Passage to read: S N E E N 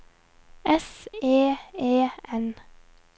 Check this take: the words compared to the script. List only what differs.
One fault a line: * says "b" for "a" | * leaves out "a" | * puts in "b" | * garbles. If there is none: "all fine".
* leaves out "N"